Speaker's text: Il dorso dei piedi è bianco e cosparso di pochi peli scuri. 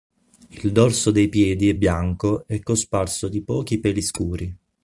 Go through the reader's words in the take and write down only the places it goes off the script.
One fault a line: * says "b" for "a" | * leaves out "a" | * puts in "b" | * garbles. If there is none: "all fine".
all fine